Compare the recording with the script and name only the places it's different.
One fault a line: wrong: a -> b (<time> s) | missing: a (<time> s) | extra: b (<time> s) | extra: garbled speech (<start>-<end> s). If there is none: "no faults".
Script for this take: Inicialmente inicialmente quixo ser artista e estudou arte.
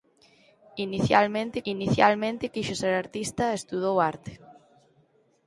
no faults